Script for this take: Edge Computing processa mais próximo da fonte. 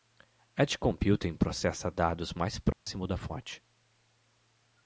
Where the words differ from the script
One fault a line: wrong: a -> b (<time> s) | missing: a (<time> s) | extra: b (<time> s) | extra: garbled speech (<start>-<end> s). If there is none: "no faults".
extra: dados (1.9 s)